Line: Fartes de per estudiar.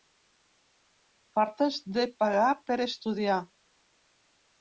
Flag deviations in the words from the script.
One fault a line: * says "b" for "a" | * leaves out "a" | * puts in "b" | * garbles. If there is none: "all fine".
* puts in "pagar"